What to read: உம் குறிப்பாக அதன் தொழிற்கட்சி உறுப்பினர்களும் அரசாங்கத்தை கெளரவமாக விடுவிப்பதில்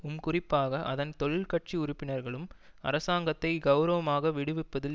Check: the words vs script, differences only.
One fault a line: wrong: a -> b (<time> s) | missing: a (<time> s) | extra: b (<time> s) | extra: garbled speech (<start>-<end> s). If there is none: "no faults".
no faults